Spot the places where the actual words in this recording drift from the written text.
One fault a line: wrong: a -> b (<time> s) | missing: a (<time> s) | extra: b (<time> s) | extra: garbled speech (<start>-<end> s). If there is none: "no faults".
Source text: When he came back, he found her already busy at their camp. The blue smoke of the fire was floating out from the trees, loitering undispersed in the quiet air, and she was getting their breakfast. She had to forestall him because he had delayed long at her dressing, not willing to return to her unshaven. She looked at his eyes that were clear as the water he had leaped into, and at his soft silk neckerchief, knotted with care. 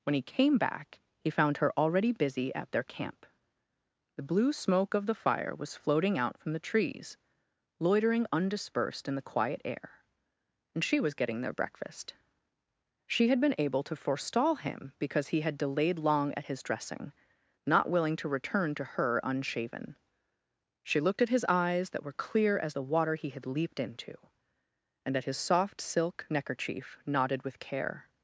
extra: been able (13.4 s)
wrong: her -> his (16.4 s)